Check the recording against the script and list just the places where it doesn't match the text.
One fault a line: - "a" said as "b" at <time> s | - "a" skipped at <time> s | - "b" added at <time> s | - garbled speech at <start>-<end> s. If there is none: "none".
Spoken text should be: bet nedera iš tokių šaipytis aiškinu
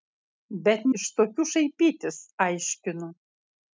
- "nedera" skipped at 0.9 s